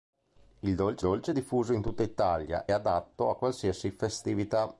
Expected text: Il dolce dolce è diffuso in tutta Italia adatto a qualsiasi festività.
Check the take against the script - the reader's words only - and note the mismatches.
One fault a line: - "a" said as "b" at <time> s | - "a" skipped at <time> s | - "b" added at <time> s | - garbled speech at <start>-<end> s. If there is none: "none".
none